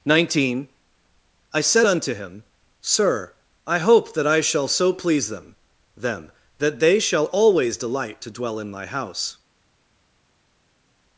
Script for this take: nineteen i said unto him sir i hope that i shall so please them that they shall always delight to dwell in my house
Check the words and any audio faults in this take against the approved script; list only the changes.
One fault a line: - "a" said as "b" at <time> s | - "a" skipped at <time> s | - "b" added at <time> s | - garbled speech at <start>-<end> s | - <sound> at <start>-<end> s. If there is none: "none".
- "them" added at 6.0 s